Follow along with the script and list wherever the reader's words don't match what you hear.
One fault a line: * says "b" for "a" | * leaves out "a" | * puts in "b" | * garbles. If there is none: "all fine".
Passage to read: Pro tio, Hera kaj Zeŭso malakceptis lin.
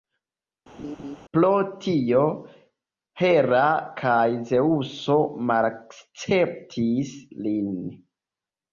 all fine